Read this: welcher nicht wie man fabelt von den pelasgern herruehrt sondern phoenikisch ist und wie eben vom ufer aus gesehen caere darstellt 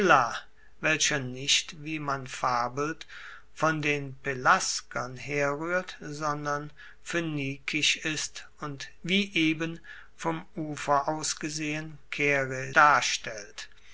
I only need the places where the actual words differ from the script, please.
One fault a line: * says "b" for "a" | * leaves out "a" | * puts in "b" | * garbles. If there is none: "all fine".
all fine